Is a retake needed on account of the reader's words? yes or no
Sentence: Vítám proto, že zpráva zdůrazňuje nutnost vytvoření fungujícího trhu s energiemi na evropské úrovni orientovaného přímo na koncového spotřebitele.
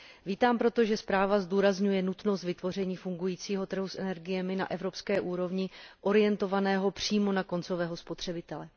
no